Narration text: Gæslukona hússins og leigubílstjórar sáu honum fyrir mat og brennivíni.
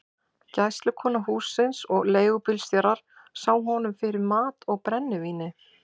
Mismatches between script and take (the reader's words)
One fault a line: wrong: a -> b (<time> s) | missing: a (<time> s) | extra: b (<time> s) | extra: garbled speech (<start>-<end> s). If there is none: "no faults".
no faults